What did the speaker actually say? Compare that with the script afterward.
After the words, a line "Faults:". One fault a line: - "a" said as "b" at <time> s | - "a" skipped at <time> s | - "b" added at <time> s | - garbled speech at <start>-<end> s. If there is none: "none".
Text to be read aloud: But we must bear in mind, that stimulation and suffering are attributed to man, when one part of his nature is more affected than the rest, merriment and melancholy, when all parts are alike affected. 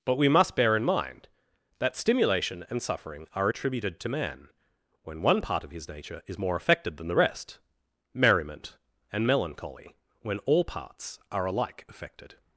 But we must bear in mind, that stimulation and suffering are attributed to man, when one part of his nature is more affected than the rest, merriment and melancholy, when all parts are alike affected.
Faults:
none